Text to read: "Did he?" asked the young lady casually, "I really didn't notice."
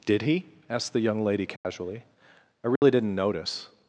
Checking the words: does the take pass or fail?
pass